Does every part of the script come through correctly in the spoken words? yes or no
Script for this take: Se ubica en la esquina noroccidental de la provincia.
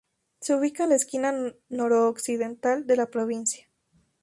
yes